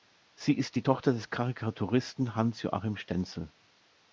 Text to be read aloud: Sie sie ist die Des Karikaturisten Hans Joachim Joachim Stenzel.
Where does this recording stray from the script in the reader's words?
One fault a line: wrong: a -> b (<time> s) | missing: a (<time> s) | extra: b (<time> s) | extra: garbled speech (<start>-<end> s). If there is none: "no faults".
missing: sie (0.5 s)
extra: Tochter (0.8 s)
missing: Joachim (3.0 s)